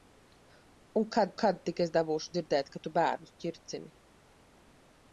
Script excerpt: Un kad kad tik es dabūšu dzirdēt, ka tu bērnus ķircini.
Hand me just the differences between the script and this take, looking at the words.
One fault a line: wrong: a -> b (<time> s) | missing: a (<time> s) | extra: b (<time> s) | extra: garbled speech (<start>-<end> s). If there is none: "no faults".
no faults